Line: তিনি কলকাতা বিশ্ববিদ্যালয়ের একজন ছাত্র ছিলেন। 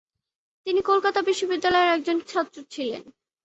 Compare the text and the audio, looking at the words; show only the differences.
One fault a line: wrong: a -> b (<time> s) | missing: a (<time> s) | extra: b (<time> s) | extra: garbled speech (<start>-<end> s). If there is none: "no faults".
no faults